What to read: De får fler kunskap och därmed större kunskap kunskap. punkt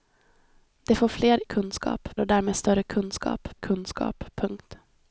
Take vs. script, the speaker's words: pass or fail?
pass